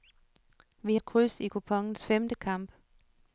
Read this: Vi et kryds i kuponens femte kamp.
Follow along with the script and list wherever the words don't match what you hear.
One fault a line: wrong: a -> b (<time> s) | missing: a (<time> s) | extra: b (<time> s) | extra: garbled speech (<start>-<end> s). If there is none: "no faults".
no faults